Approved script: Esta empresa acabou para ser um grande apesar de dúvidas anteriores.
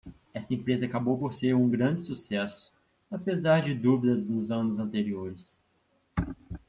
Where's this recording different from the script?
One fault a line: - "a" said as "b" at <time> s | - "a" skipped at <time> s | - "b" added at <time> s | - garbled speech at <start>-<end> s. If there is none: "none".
- "para" said as "por" at 1.2 s
- "sucesso" added at 2.0 s
- "nos anos" added at 4.3 s